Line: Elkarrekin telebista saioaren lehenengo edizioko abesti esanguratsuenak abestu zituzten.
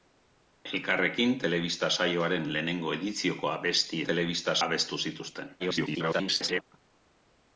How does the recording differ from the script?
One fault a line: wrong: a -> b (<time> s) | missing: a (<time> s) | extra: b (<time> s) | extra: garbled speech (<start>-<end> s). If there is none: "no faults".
wrong: esanguratsuenak -> telebista (4.1 s)
extra: garbled speech (5.6-6.6 s)